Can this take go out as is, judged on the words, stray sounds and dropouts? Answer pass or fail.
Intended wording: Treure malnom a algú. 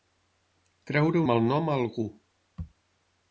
pass